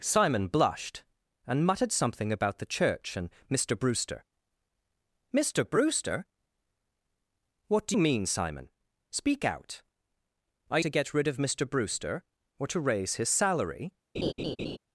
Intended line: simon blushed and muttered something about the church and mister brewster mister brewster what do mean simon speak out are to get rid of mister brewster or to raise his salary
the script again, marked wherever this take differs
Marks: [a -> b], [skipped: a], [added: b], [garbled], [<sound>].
simon blushed and muttered something about the church and mister brewster mister brewster what do mean simon speak out are to get rid of mister brewster or to raise his salary [laugh]